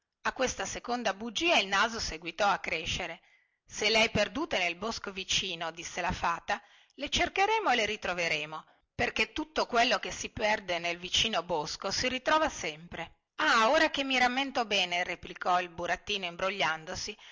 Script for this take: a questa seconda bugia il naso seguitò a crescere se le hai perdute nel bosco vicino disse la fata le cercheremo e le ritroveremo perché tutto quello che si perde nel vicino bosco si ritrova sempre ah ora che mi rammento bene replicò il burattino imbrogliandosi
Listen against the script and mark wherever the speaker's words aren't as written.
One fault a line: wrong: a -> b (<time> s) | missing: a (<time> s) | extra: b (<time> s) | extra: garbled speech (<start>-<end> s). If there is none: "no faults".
no faults